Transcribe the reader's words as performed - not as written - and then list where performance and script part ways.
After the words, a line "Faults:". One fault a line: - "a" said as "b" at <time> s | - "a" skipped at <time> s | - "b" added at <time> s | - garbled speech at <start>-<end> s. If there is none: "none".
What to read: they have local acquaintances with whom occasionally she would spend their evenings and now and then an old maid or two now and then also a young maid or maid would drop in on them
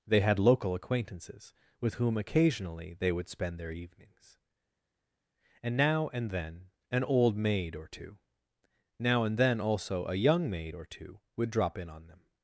they had local acquaintances with whom occasionally they would spend their evenings and now and then an old maid or two now and then also a young maid or two would drop in on them
Faults:
- "have" said as "had" at 0.2 s
- "she" said as "they" at 2.9 s
- "maid" said as "two" at 10.9 s